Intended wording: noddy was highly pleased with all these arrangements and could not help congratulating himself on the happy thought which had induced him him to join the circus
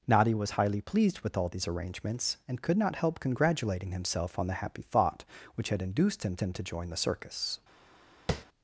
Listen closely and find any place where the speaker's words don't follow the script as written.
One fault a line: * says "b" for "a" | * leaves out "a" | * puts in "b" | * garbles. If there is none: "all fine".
all fine